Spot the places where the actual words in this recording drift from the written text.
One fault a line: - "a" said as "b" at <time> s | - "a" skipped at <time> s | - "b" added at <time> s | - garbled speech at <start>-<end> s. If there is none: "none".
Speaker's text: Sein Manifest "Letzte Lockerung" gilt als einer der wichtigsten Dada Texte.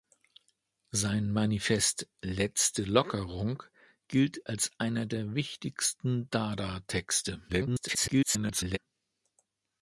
- garbled speech at 7.5-8.8 s